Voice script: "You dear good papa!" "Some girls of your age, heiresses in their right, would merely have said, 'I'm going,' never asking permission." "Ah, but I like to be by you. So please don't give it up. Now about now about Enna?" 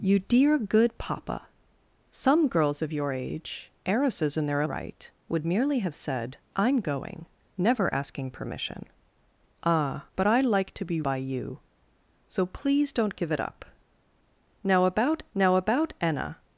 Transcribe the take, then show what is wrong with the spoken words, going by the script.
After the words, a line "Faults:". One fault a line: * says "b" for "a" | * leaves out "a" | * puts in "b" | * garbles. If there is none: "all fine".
"You dear good papa!" "Some girls of your age, heiresses in their right, would merely have said, 'I'm going,' never asking permission." "Ah, but I like to be by you. So please don't give it up. Now about now about Enna?"
Faults:
all fine